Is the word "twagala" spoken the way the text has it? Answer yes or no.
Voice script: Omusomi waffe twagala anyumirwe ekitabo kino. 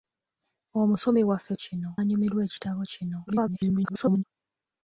no